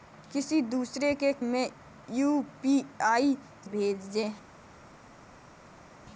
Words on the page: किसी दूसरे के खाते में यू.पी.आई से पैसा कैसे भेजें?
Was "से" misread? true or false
true